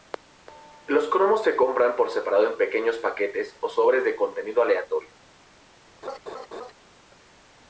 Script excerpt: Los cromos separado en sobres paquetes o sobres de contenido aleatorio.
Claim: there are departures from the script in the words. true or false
true